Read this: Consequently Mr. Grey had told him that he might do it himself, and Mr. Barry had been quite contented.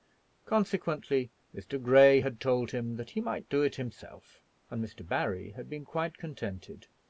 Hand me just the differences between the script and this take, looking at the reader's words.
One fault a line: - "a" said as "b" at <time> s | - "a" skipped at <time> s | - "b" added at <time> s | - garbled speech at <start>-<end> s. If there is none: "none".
none